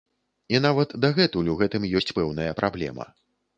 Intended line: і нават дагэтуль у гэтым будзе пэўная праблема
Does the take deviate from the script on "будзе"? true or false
true